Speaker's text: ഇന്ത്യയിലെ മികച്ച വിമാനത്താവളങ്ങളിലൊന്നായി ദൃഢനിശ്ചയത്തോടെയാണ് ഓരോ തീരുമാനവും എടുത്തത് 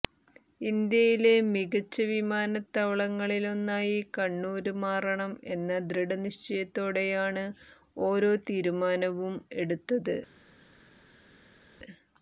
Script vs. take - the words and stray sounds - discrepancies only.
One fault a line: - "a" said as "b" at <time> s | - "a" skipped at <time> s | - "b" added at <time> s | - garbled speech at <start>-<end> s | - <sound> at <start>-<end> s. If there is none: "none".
- "കണ്ണൂര് മാറണം എന്ന" added at 4.2 s